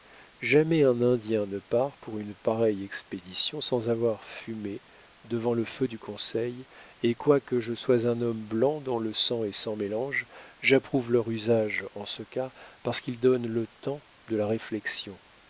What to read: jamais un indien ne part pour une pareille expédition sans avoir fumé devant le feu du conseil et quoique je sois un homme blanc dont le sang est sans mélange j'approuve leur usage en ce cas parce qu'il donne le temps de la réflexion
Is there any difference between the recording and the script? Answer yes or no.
no